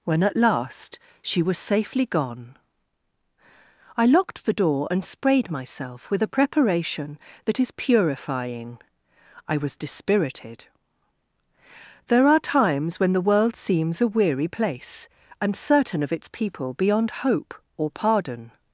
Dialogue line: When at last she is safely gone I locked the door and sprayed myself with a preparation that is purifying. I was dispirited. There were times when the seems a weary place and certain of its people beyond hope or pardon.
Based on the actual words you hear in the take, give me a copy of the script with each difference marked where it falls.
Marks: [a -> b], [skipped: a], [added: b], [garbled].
When at last she [is -> was] safely gone I locked the door and sprayed myself with a preparation that is purifying. I was dispirited. There [were -> are] times when the [added: world] seems a weary place and certain of its people beyond hope or pardon.